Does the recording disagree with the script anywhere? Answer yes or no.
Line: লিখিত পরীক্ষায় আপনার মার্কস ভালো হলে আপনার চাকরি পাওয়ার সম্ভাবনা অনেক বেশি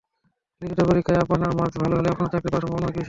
no